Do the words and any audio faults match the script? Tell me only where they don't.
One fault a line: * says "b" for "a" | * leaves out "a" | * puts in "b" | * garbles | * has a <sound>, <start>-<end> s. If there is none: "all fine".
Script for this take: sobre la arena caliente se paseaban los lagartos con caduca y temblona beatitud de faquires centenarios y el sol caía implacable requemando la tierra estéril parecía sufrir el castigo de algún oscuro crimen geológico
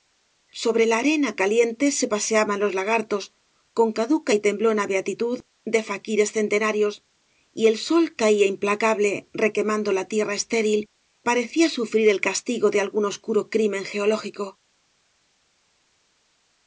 all fine